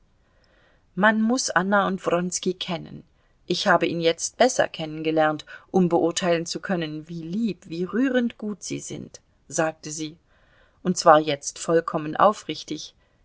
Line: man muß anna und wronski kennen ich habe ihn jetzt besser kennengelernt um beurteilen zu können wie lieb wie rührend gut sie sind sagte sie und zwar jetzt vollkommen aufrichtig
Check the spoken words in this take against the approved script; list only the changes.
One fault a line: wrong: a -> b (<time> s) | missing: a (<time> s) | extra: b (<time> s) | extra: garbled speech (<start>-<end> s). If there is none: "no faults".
no faults